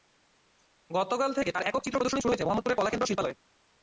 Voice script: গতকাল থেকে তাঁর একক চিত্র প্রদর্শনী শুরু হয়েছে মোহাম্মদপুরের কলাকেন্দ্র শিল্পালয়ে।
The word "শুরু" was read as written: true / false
true